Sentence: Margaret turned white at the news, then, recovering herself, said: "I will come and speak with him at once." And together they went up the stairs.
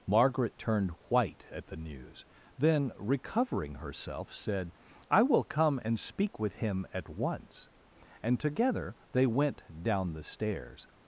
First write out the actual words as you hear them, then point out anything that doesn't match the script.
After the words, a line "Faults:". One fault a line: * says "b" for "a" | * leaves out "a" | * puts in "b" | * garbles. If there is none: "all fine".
Margaret turned white at the news, then, recovering herself, said: "I will come and speak with him at once." And together they went down the stairs.
Faults:
* says "down" for "up"